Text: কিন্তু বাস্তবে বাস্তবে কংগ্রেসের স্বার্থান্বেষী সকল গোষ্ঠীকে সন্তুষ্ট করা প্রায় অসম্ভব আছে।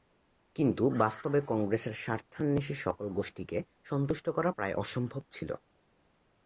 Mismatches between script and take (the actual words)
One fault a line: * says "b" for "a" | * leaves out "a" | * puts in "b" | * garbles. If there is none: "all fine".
* leaves out "বাস্তবে"
* says "ছিল" for "আছে"